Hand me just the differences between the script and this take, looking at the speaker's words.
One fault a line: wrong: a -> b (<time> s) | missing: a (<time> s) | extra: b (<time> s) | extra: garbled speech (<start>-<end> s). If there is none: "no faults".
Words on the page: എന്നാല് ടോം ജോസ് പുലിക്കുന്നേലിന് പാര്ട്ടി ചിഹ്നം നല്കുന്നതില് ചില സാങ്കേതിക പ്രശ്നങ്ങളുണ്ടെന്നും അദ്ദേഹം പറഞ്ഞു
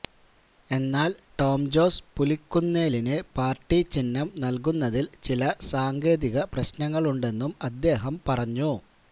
no faults